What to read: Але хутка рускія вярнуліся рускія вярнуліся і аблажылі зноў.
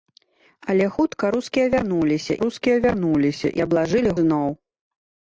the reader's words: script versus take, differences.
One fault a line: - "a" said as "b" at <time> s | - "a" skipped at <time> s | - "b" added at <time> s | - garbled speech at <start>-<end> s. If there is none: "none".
none